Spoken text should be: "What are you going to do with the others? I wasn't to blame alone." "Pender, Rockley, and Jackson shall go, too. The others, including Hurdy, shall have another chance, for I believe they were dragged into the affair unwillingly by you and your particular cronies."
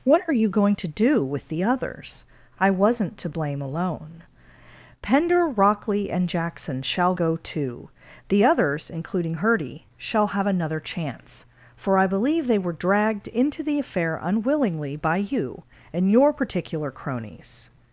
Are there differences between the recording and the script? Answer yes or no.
no